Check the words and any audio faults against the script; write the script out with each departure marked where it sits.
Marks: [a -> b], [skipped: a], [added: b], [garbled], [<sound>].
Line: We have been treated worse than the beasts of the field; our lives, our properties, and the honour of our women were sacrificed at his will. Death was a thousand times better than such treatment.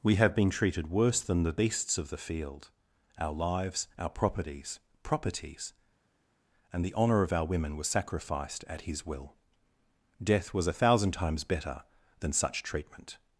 We have been treated worse than the beasts of the field; our lives, our properties, [added: properties] and the honour of our women were sacrificed at his will. Death was a thousand times better than such treatment.